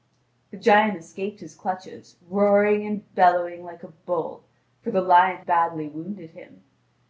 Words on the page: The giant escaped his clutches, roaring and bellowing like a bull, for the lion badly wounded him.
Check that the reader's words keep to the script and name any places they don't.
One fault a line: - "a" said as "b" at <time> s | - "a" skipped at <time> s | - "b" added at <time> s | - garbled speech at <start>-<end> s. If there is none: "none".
none